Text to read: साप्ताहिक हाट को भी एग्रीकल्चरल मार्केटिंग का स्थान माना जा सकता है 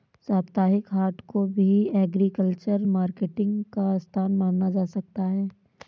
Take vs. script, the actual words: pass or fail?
pass